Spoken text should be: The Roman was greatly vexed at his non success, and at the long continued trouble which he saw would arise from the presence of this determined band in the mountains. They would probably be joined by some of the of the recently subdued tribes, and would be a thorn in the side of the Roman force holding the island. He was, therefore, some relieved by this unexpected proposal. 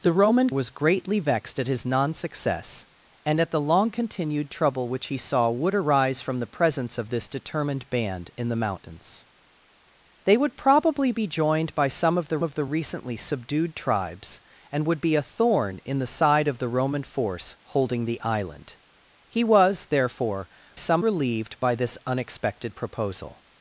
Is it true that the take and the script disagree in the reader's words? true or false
false